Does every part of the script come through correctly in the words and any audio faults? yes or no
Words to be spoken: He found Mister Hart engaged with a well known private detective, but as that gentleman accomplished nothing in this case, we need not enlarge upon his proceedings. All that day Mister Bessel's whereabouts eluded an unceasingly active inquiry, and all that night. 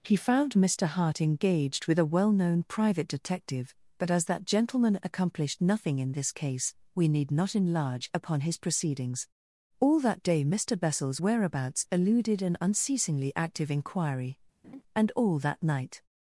no